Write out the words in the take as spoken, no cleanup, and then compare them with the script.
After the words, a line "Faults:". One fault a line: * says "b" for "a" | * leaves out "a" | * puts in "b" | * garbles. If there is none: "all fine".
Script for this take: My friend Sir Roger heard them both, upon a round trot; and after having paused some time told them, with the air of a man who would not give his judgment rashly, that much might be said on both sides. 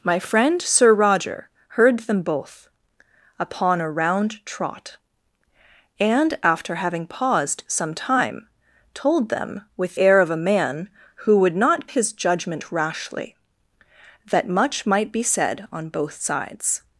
My friend Sir Roger heard them both, upon a round trot; and after having paused some time told them, with air of a man who would not his judgment rashly, that much might be said on both sides.
Faults:
* leaves out "the"
* leaves out "give"